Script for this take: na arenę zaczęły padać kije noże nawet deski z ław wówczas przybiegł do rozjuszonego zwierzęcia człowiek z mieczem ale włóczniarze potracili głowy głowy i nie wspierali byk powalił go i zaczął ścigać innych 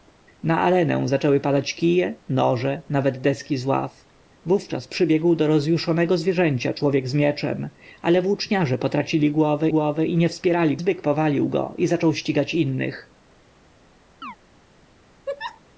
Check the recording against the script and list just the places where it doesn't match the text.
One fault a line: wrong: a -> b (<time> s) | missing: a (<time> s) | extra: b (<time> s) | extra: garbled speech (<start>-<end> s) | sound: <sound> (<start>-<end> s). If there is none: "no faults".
sound: chirp (14.2-14.4 s)
sound: laugh (15.3-15.6 s)